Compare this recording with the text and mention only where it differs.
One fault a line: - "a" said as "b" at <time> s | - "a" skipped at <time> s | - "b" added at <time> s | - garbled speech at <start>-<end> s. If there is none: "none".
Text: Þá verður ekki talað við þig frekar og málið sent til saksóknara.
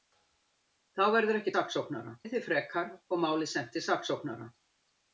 - "talað" said as "saksóknara" at 1.6 s